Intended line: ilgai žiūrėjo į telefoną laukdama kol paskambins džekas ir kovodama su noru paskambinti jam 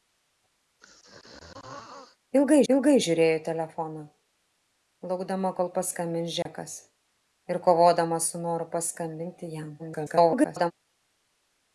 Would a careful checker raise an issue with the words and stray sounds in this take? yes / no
yes